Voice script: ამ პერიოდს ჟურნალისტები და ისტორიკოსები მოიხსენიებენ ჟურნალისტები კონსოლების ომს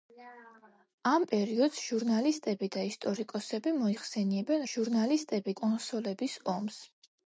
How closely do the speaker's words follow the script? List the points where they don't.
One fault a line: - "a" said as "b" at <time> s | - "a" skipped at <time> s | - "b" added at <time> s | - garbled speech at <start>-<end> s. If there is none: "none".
none